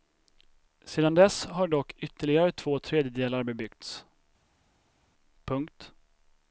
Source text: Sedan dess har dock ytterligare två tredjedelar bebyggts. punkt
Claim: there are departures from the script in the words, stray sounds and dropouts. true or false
false